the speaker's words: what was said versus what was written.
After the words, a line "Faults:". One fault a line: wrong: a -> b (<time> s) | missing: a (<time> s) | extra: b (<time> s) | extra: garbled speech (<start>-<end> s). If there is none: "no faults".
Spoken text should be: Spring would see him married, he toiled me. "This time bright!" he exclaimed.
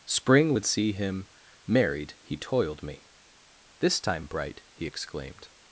Spring would see him married, he toiled me. "This time bright!" he exclaimed.
Faults:
no faults